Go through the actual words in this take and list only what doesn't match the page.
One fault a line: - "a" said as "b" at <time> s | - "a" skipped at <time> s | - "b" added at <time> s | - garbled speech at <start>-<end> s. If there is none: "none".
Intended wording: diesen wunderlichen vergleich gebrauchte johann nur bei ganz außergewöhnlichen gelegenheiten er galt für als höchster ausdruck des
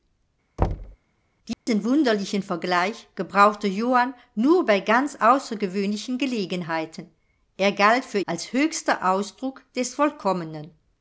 none